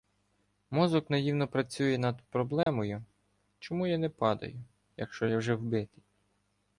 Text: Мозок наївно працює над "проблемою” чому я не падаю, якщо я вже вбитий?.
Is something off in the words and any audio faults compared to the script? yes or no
yes